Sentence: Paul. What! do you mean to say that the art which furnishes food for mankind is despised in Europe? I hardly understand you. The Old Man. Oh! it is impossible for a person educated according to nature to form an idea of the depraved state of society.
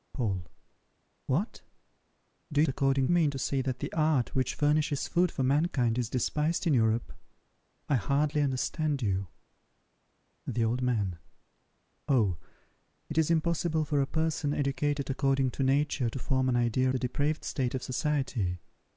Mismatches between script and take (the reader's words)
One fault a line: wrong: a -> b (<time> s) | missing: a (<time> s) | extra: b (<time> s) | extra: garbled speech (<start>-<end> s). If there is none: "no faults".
wrong: you -> according (2.7 s)
missing: of (16.9 s)